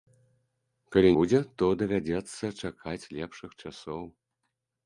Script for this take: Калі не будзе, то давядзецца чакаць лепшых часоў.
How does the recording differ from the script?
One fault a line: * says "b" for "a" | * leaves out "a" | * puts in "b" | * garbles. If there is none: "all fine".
* leaves out "не"